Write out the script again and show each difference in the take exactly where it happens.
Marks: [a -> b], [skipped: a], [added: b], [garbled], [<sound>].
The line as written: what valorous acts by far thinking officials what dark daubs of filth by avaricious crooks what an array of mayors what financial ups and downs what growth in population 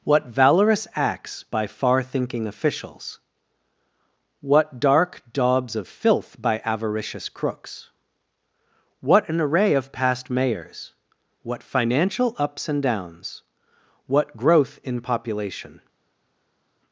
what valorous acts by far thinking officials what dark daubs of filth by avaricious crooks what an array of [added: past] mayors what financial ups and downs what growth in population